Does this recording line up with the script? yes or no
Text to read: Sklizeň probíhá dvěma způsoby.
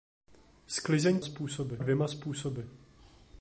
no